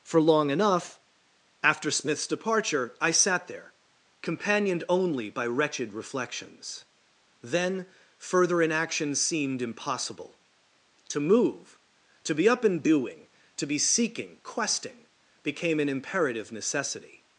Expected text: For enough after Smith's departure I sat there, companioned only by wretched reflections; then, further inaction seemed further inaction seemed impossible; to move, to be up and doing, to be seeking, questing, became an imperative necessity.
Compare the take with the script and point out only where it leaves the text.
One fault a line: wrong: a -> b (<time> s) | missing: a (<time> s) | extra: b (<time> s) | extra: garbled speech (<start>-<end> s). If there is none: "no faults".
extra: long (0.2 s)
missing: further inaction seemed (9.6 s)